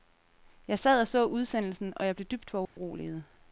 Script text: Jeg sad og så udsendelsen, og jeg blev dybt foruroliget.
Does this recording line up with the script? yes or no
yes